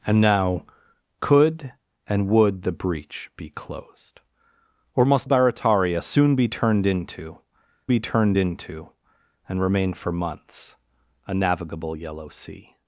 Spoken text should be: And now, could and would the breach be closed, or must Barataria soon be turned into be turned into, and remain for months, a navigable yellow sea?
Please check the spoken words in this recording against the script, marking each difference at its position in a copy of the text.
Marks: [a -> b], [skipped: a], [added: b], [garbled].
And now, could and would the breach be closed, or must Barataria soon be turned into be turned into, and remain for months, a navigable yellow sea?